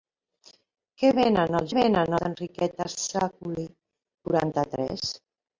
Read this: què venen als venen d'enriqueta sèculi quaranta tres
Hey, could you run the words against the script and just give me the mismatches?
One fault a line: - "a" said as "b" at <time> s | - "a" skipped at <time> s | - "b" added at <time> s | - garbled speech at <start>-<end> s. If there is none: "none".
none